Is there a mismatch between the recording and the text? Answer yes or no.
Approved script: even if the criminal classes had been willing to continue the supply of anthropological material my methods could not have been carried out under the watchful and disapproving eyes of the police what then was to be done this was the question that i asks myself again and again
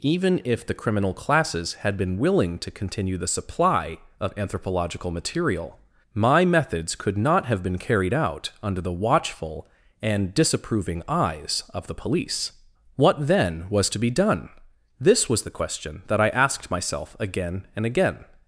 yes